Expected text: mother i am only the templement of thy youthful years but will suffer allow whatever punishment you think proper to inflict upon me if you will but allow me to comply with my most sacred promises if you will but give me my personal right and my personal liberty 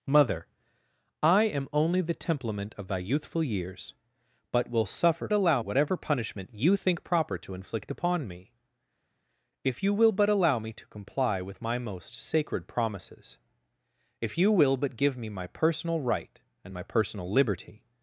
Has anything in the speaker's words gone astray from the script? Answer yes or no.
no